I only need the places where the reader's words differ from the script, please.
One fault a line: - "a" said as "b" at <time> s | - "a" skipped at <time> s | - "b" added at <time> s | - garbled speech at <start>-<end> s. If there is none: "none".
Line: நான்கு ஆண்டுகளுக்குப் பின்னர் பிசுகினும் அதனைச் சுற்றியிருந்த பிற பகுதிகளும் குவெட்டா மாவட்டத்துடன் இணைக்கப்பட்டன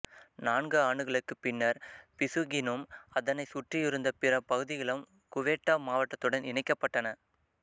none